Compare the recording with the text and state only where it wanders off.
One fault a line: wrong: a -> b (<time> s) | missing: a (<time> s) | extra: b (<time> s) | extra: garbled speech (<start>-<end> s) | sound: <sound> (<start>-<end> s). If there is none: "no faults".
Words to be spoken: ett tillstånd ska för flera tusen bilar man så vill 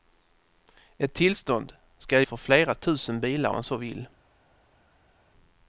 no faults